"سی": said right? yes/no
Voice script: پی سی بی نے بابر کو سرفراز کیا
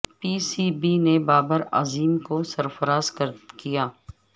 yes